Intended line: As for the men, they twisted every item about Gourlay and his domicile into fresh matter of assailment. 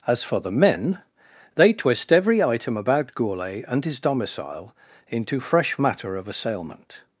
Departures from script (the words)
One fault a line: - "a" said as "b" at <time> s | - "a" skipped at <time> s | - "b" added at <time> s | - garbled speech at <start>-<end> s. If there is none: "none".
- "twisted" said as "twist" at 1.7 s